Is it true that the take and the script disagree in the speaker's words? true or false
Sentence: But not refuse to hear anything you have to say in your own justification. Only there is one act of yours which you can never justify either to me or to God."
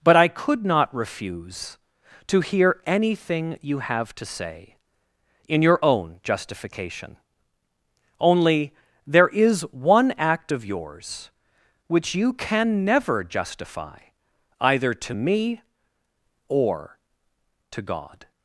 true